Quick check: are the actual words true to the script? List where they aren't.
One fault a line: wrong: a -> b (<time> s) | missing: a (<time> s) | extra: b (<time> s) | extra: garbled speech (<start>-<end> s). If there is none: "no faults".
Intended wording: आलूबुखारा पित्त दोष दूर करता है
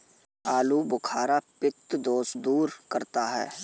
no faults